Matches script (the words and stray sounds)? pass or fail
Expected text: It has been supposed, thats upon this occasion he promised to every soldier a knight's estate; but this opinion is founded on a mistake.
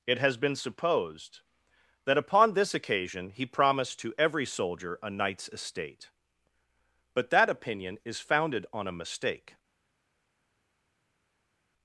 fail